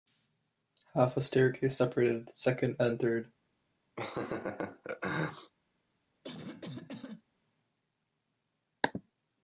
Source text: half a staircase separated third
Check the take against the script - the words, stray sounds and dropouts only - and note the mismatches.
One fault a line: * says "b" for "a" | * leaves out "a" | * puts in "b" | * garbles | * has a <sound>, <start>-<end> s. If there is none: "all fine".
* puts in "second and"
* has a laugh, 4.0-5.5 s
* has a cough, 6.2-7.2 s